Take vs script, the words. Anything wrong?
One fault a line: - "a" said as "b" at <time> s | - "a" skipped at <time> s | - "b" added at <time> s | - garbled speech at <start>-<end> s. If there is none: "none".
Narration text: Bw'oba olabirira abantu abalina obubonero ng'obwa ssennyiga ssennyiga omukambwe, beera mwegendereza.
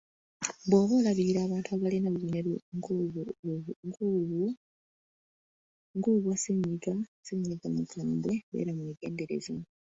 none